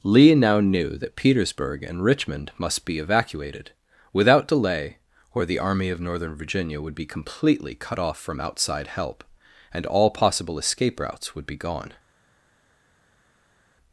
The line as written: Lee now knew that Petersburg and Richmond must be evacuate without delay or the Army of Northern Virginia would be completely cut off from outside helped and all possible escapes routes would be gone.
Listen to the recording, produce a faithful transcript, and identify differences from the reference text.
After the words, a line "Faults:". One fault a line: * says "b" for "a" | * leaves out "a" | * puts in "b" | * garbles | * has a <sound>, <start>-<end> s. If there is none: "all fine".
Lee now knew that Petersburg and Richmond must be evacuated without delay or the Army of Northern Virginia would be completely cut off from outside help and all possible escape routes would be gone.
Faults:
* says "evacuated" for "evacuate"
* says "help" for "helped"
* says "escape" for "escapes"